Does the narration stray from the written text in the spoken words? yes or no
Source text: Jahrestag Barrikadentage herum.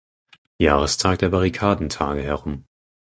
yes